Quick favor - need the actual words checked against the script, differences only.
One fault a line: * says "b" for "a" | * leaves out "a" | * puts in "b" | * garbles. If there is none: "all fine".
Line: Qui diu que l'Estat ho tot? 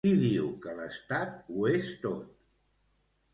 * puts in "és"